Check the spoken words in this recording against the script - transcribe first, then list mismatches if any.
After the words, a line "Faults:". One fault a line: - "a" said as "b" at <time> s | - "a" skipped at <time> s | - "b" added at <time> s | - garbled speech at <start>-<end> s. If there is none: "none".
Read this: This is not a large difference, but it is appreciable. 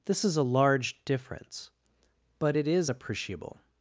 This is a large difference, but it is appreciable.
Faults:
- "not" skipped at 0.3 s